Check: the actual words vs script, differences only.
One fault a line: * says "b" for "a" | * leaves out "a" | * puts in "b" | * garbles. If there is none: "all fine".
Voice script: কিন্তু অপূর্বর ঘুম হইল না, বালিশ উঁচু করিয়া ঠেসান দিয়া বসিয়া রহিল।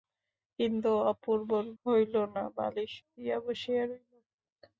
* leaves out "ঘুম"
* leaves out "উঁচু করিয়া ঠেসান"